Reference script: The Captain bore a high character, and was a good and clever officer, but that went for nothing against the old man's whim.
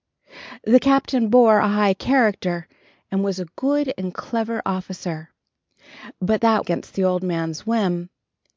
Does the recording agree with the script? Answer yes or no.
no